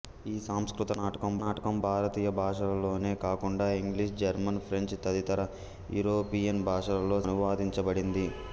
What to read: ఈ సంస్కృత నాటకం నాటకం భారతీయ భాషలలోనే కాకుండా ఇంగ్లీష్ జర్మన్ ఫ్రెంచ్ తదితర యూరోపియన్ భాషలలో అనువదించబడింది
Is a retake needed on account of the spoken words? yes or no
no